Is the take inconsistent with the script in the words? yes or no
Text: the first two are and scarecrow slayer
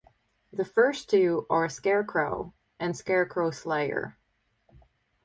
yes